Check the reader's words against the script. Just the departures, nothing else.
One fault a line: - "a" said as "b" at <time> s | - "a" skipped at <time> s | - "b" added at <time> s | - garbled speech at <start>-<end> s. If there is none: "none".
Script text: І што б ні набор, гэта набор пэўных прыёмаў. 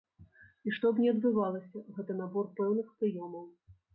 - "набор" said as "адбывалася" at 1.1 s